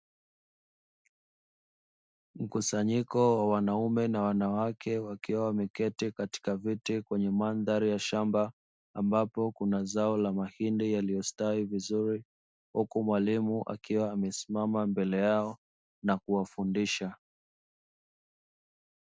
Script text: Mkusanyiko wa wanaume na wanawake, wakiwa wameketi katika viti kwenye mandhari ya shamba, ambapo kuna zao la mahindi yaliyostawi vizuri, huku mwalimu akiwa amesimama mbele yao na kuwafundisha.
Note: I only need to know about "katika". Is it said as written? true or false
true